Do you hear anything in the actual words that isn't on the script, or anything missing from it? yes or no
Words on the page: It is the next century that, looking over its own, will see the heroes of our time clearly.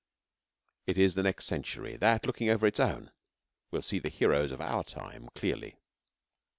no